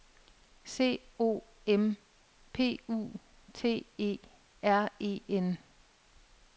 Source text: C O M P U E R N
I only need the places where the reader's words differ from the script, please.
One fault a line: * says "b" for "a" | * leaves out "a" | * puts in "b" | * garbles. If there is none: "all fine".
* puts in "T"
* puts in "E"